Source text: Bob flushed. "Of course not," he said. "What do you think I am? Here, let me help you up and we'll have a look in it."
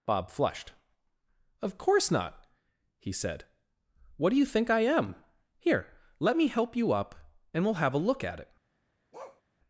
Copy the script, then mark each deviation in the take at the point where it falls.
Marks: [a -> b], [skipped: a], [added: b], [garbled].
Bob flushed. "Of course not," he said. "What do you think I am? Here, let me help you up and we'll have a look [in -> at] it."